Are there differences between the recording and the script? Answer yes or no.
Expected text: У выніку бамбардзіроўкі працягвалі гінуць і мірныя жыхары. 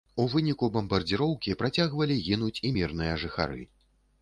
no